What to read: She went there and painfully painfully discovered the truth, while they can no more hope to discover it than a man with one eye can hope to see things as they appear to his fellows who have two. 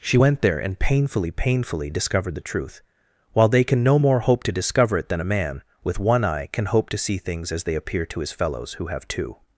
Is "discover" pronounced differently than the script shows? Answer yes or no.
no